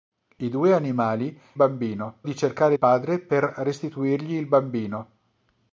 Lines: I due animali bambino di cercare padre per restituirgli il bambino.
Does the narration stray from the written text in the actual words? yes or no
no